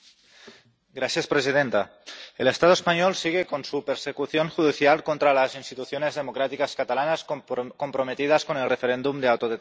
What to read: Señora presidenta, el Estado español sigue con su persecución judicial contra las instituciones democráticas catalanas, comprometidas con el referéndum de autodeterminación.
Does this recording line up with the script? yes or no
yes